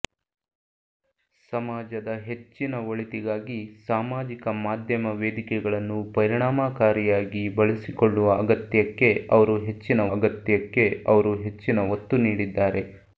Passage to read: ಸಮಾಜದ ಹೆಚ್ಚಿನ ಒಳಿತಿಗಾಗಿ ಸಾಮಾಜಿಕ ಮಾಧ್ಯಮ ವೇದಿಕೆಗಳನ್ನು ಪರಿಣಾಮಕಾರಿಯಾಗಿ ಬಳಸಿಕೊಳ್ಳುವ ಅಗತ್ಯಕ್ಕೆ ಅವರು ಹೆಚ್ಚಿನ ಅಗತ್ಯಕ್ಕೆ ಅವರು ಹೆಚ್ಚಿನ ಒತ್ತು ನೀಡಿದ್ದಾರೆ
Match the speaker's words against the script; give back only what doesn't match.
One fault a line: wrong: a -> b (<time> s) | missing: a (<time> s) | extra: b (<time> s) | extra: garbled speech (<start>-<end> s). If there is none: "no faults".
no faults